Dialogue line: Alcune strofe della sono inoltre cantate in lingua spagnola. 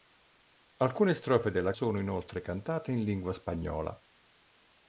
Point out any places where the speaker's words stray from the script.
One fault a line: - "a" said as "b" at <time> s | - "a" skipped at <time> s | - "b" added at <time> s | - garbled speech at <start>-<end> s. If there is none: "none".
none